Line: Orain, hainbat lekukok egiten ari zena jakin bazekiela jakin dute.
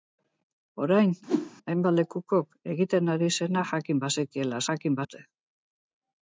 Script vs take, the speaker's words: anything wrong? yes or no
no